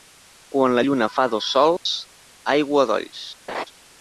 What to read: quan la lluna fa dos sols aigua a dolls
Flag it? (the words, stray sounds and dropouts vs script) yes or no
yes